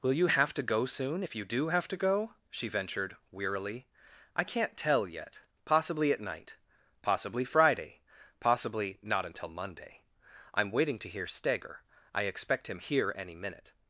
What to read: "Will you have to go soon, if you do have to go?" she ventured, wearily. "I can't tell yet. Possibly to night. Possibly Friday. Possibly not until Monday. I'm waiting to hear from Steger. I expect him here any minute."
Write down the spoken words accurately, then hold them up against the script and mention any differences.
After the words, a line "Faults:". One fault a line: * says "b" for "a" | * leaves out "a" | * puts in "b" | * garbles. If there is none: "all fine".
"Will you have to go soon, if you do have to go?" she ventured, wearily. "I can't tell yet. Possibly at night. Possibly Friday. Possibly not until Monday. I'm waiting to hear Steger. I expect him here any minute."
Faults:
* says "at" for "to"
* leaves out "from"